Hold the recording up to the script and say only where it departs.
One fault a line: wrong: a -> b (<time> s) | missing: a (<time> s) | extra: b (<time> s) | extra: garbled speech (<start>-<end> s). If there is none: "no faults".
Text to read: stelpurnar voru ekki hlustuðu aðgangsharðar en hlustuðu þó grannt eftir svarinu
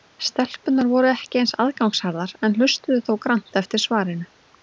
wrong: hlustuðu -> eins (1.4 s)